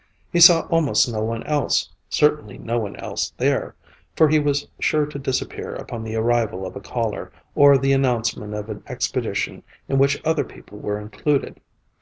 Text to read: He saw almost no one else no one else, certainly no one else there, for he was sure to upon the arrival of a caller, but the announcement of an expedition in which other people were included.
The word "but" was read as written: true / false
false